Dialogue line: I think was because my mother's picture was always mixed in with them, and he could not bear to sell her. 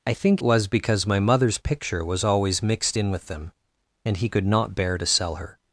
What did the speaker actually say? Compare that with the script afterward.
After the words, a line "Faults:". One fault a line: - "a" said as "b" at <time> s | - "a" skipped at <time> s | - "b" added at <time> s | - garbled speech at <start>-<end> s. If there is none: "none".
I think was because my mother's picture was always mixed in with them, and he could not bear to sell her.
Faults:
none